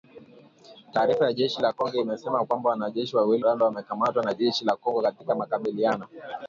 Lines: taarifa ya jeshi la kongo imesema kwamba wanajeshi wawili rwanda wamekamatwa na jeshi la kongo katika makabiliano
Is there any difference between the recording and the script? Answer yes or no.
no